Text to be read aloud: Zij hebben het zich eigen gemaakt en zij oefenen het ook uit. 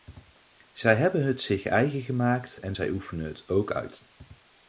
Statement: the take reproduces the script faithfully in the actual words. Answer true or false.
true